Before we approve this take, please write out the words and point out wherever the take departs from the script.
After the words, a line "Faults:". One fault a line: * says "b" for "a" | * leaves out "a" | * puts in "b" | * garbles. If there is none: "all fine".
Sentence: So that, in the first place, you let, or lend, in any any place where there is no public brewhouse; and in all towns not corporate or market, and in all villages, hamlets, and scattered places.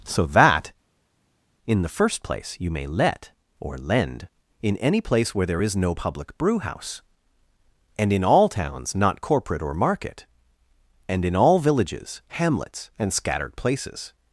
So that, in the first place, you may let, or lend, in any place where there is no public brewhouse; and in all towns not corporate or market, and in all villages, hamlets, and scattered places.
Faults:
* puts in "may"
* leaves out "any"